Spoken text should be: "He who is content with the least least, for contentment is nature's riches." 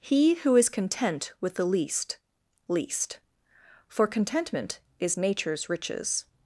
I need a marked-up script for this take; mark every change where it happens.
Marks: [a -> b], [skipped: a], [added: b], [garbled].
"He who is content with the least least, for contentment is nature's riches."